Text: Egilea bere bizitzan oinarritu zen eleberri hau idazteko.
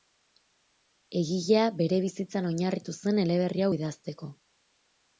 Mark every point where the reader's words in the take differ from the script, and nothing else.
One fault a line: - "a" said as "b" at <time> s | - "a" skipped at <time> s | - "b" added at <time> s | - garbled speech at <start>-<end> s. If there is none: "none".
none